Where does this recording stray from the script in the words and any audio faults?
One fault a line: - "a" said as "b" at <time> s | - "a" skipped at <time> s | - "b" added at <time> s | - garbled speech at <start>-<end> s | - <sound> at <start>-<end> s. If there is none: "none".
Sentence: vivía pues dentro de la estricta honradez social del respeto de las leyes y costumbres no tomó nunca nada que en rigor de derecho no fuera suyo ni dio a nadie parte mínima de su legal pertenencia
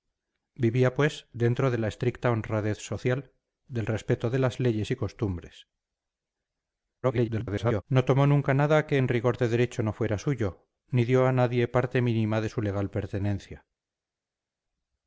- garbled speech at 7.0-7.8 s